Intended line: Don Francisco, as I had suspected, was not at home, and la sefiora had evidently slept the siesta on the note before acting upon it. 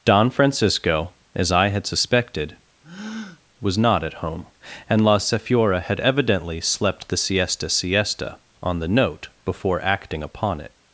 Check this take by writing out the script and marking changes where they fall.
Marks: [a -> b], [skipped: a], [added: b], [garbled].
Don Francisco, as I had suspected, was not at home, and la sefiora had evidently slept the siesta [added: siesta] on the note before acting upon it.